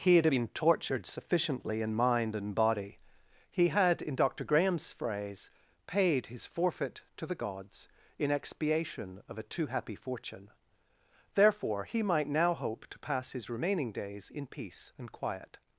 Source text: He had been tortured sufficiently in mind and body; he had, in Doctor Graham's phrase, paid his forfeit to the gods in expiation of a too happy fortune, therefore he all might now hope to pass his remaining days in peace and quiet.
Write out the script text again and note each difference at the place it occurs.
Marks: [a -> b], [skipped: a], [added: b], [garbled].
He had been tortured sufficiently in mind and body; he had, in Doctor Graham's phrase, paid his forfeit to the gods in expiation of a too happy fortune, therefore he [skipped: all] might now hope to pass his remaining days in peace and quiet.